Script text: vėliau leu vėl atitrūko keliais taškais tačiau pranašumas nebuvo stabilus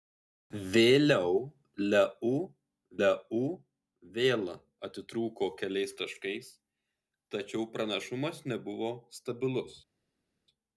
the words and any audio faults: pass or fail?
fail